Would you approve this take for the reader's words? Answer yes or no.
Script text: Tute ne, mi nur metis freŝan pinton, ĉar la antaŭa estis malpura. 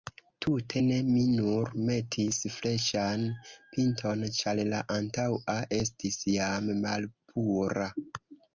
no